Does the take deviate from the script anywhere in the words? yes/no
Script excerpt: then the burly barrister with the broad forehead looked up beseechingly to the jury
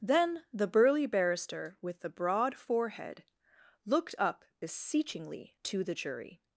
no